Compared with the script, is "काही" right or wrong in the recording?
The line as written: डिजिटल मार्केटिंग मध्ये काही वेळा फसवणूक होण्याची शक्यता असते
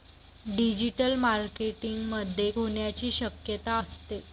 wrong